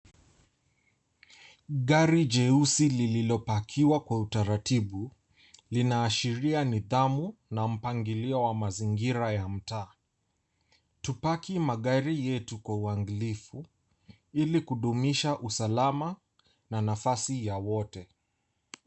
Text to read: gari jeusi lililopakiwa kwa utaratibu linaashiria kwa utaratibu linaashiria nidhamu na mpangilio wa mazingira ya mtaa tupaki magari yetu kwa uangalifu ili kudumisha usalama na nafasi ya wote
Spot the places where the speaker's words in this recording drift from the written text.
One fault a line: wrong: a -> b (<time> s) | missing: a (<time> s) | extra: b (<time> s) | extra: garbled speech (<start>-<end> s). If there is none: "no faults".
missing: kwa utaratibu linaashiria (6.6 s)